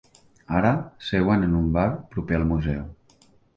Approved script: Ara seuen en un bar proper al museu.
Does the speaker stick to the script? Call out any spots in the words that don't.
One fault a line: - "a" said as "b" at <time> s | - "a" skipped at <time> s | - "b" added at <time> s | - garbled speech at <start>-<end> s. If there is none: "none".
none